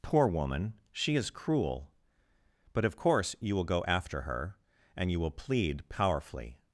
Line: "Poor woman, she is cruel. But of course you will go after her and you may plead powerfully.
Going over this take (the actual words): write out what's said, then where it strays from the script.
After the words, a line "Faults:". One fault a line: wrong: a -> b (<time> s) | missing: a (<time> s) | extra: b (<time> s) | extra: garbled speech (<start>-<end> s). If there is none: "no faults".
"Poor woman, she is cruel. But of course you will go after her and you will plead powerfully.
Faults:
wrong: may -> will (5.2 s)